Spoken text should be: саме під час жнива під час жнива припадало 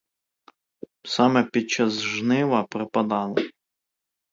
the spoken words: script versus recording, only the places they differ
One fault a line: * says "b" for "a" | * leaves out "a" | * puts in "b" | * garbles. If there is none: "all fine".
* leaves out "під час жнива"